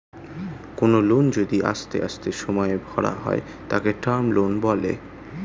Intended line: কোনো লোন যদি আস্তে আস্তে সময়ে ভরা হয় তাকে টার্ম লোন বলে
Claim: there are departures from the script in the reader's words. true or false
false